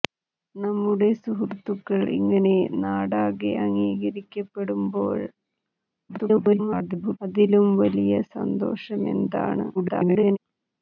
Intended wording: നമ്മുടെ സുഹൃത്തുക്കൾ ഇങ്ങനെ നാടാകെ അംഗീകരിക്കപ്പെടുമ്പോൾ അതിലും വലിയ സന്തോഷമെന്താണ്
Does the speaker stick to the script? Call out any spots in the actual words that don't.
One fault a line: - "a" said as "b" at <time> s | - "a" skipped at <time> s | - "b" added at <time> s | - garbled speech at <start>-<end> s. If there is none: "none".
- garbled speech at 6.1-7.2 s
- garbled speech at 9.7-10.4 s